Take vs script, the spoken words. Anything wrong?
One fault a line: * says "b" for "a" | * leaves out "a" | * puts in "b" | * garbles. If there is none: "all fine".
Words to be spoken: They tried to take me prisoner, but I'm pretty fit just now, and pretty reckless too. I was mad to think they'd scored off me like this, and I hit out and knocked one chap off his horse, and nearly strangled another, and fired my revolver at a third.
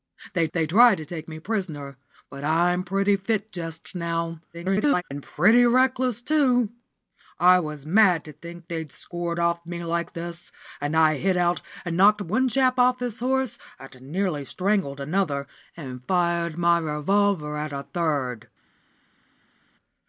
* puts in "they"
* garbles